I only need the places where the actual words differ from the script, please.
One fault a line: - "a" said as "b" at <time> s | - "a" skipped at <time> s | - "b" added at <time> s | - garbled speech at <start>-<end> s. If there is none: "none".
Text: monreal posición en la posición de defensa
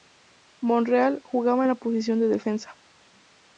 - "posición" said as "jugaba" at 1.2 s